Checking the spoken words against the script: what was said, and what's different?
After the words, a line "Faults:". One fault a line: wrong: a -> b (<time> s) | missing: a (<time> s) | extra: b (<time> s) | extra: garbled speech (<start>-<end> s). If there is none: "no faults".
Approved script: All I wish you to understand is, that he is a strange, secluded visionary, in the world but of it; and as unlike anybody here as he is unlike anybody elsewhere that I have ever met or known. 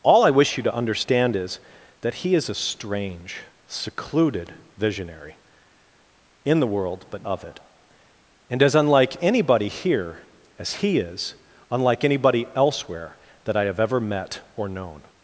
All I wish you to understand is, that he is a strange, secluded visionary, in the world but of it; and as unlike anybody here as he is unlike anybody elsewhere that I have ever met or known.
Faults:
no faults